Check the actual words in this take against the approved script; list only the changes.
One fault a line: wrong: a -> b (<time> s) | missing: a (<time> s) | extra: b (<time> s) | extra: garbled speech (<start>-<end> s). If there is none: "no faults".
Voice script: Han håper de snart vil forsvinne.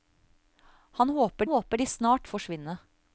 extra: håper (1.4 s)
missing: vil (2.3 s)